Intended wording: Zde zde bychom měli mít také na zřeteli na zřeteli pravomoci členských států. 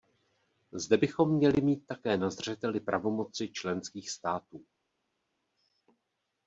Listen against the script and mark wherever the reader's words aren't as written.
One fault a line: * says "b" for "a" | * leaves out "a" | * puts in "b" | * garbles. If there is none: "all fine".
* leaves out "zde"
* leaves out "na zřeteli"